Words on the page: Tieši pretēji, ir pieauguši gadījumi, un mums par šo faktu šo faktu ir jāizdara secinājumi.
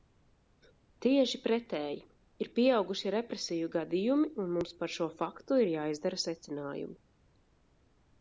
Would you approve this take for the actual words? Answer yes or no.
no